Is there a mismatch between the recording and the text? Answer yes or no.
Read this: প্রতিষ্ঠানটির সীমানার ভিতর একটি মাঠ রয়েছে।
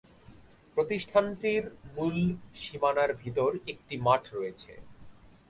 yes